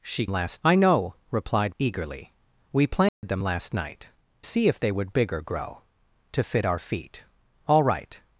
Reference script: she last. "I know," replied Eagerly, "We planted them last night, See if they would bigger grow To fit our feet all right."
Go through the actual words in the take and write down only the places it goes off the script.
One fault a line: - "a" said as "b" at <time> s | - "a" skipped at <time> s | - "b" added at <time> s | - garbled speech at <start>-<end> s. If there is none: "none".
none